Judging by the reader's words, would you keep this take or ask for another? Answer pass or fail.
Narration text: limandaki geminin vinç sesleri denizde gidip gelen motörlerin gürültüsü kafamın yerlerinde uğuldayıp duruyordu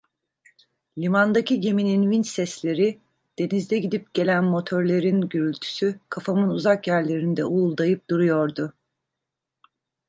fail